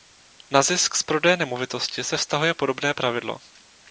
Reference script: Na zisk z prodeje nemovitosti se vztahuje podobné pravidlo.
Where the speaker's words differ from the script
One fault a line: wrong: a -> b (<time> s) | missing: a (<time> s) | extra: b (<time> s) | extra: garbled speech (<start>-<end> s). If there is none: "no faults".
no faults